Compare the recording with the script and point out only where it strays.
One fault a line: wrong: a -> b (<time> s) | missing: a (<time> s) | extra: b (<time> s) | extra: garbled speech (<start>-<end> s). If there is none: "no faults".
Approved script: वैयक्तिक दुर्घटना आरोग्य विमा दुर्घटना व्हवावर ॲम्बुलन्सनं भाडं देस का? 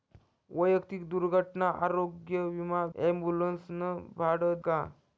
missing: दुर्घटना व्हवावर (2.8 s)
missing: देस (4.6 s)